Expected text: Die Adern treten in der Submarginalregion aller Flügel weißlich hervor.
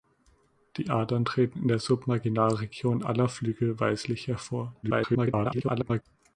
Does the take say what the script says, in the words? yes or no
no